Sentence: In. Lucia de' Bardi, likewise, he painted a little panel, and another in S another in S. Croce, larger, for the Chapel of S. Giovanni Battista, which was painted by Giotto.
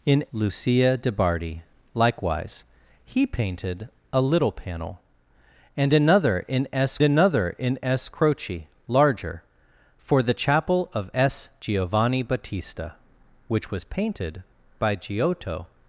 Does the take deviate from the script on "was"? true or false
false